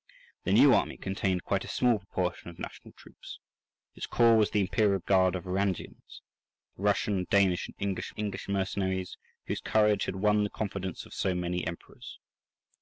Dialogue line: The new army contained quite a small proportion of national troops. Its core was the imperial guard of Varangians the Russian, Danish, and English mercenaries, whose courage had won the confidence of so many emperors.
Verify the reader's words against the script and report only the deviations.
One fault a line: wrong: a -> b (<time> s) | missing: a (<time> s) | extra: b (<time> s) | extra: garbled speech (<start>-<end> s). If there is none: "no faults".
extra: English (8.1 s)